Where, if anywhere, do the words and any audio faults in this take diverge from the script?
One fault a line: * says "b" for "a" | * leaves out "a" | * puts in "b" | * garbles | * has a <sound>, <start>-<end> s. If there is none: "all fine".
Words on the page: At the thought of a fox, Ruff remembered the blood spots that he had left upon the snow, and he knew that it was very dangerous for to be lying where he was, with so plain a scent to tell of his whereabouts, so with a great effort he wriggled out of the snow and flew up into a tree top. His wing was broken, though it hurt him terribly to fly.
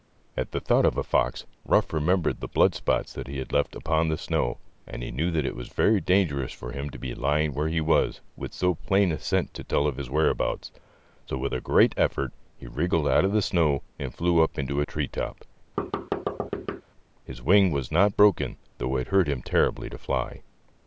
* puts in "him"
* has a thud, 15.8-16.8 s
* puts in "not"